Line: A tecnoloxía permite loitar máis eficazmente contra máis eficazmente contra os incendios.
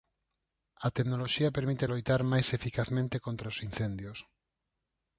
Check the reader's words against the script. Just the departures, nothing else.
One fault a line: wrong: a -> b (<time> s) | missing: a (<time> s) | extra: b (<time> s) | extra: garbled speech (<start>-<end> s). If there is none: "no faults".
missing: máis eficazmente contra (3.5 s)